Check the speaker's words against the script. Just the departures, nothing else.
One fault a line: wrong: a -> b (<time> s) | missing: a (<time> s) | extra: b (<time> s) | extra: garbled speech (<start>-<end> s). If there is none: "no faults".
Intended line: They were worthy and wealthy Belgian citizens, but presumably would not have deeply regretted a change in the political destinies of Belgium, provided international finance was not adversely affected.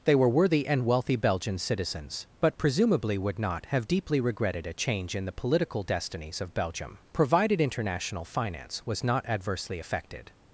no faults